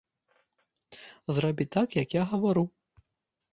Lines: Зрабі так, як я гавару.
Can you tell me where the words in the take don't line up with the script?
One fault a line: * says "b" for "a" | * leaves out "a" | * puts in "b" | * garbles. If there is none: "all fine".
all fine